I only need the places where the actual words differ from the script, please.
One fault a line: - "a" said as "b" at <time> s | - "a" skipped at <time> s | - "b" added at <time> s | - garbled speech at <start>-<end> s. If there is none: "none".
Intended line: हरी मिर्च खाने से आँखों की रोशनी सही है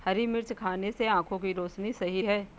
none